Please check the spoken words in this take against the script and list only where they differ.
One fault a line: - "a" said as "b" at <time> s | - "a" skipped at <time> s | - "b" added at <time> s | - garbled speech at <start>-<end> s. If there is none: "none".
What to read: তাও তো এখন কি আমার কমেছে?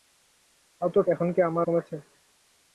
none